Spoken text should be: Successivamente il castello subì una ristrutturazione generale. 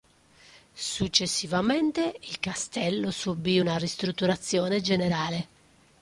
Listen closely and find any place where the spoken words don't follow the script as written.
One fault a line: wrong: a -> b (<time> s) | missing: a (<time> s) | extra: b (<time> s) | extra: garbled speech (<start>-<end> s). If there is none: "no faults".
no faults